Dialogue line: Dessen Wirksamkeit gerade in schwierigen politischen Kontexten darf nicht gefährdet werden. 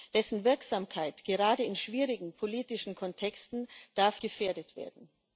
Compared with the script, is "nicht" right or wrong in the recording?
wrong